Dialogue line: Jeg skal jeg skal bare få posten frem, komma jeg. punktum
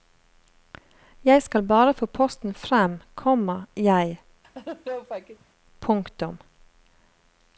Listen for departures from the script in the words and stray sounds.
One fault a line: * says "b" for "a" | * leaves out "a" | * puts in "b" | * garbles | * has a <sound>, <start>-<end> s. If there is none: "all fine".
* leaves out "jeg skal"
* has a laugh, 4.4-5.5 s